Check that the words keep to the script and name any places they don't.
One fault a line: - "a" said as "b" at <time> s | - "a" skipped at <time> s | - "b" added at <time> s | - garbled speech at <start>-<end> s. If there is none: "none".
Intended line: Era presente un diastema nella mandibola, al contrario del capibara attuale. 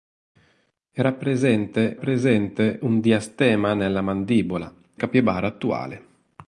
- "presente" added at 1.9 s
- "al contrario del" skipped at 4.7 s